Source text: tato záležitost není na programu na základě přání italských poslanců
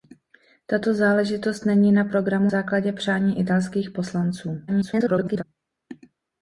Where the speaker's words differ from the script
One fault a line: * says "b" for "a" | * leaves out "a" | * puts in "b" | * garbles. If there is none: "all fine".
* leaves out "na"
* garbles